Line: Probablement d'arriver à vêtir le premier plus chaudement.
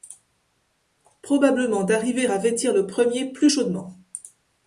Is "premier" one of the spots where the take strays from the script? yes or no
no